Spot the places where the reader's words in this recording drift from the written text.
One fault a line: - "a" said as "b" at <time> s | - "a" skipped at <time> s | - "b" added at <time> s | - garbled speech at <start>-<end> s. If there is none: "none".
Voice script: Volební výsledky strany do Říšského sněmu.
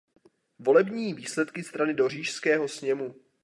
none